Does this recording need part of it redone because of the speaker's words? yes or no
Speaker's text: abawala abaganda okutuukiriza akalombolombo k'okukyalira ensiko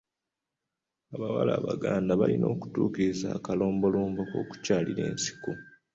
yes